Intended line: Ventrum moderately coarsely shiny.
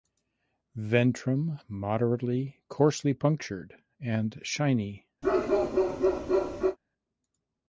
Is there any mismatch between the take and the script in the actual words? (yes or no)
yes